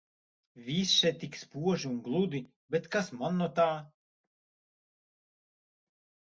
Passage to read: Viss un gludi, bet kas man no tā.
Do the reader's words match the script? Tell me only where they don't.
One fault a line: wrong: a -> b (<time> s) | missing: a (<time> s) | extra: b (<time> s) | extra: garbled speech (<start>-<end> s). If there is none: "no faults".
extra: še tik spoži (1.0 s)